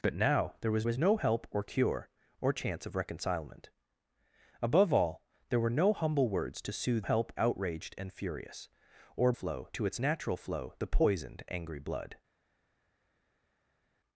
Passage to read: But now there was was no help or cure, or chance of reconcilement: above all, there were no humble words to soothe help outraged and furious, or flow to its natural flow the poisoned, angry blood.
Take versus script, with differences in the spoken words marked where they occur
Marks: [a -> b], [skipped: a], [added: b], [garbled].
But now there was was no help or cure, or chance of reconcilement: above all, there were no humble words to soothe help outraged and furious, or flow to its natural flow the poisoned, angry blood.